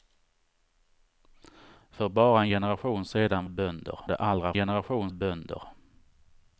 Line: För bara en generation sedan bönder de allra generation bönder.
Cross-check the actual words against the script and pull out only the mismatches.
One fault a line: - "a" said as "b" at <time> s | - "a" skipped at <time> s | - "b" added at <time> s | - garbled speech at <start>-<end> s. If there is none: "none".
none